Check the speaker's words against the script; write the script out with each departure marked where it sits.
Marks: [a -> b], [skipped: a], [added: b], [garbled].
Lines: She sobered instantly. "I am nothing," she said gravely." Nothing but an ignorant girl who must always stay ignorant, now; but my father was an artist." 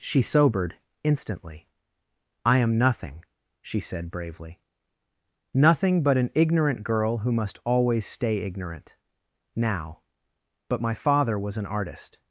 She sobered instantly. "I am nothing," she said [gravely." -> bravely] Nothing but an ignorant girl who must always stay ignorant, now; but my father was an artist."